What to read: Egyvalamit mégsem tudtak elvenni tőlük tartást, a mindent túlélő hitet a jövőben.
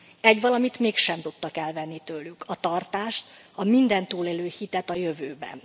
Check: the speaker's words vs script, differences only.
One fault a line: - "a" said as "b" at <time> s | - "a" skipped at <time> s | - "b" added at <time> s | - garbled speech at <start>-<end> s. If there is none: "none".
- "a" added at 2.5 s